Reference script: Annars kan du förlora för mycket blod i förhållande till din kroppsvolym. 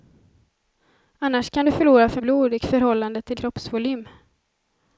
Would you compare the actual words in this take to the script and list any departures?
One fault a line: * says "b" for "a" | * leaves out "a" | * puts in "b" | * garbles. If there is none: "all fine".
* leaves out "mycket"
* leaves out "din"